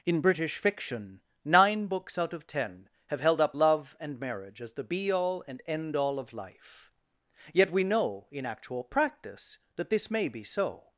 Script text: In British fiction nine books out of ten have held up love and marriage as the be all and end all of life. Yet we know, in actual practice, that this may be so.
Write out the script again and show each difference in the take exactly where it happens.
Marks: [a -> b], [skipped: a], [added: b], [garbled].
In British fiction nine books out of ten have held up love and marriage as the be all and end all of life. Yet we know, in actual practice, that this may be so.